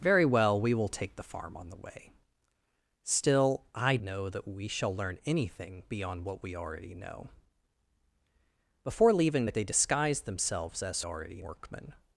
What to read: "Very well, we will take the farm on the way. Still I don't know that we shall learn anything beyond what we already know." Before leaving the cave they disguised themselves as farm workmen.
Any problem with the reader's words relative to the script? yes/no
yes